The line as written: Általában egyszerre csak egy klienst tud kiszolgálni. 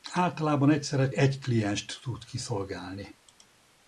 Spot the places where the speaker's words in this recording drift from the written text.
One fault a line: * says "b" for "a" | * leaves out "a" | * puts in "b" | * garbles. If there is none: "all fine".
* leaves out "csak"